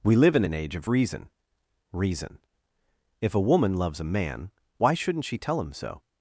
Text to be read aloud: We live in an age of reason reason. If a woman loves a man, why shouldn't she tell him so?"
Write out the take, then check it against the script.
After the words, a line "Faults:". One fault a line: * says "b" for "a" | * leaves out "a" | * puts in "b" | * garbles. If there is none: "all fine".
We live in an age of reason reason. If a woman loves a man, why shouldn't she tell him so?"
Faults:
all fine